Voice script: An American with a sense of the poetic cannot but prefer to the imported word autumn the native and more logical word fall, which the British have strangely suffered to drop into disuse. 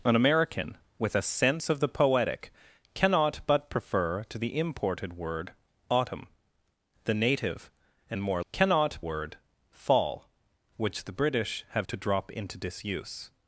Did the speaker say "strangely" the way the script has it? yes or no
no